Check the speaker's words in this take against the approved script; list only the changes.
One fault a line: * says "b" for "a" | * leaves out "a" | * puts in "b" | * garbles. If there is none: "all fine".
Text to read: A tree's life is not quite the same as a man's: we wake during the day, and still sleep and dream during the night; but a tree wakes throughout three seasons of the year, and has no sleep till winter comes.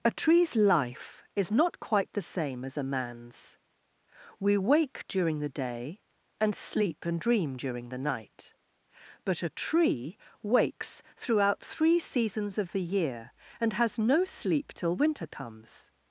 * leaves out "still"